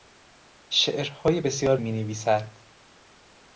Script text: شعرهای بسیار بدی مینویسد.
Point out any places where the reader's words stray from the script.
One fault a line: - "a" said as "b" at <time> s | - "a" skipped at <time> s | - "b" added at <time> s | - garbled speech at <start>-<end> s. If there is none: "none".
- "بدی" skipped at 1.8 s